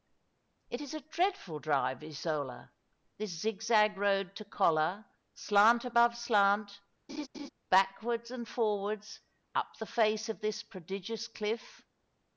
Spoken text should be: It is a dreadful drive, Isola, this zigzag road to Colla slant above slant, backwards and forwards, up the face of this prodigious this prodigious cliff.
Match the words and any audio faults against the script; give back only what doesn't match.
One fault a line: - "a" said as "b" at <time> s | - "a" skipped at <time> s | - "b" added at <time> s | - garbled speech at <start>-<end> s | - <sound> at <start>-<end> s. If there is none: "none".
- laugh at 7.1-7.5 s
- "this prodigious" skipped at 11.3 s